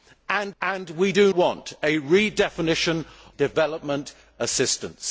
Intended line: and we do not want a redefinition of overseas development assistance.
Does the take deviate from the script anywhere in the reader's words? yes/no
yes